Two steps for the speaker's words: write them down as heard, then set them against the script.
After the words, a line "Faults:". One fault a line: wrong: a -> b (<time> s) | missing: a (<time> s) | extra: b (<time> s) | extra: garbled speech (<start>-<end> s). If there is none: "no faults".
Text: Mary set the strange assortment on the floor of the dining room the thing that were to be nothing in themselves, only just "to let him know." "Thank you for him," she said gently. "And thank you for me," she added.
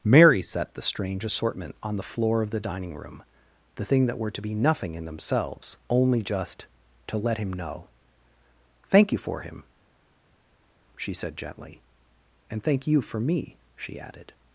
Mary set the strange assortment on the floor of the dining room the thing that were to be nothing in themselves, only just "to let him know." "Thank you for him," she said gently. "And thank you for me," she added.
Faults:
no faults